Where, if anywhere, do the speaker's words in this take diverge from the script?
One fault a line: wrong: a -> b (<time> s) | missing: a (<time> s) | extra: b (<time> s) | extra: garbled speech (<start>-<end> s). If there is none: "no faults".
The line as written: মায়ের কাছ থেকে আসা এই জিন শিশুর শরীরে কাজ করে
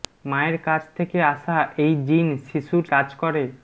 missing: শরীরে (2.9 s)